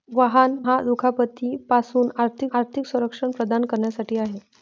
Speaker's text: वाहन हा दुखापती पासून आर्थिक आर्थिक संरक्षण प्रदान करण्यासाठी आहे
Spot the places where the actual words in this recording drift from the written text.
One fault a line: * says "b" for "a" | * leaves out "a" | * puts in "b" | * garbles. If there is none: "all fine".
all fine